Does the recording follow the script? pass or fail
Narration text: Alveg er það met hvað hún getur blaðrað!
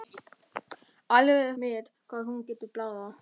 fail